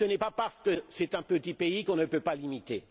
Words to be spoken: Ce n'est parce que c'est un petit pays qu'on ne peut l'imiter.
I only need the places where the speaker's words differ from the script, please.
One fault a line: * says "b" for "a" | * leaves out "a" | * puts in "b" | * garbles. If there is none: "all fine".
* puts in "pas"
* puts in "pas"